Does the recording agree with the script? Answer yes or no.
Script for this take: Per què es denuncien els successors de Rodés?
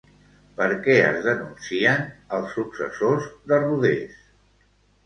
yes